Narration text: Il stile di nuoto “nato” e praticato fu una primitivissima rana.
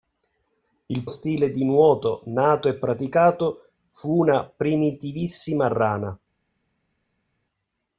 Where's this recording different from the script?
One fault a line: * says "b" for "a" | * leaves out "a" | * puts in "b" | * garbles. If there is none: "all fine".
all fine